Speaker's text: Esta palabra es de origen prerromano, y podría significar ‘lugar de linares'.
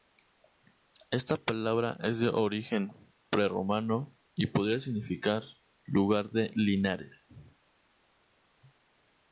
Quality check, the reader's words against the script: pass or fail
pass